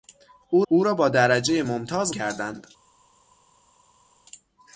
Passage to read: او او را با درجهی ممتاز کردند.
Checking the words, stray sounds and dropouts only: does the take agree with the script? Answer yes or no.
yes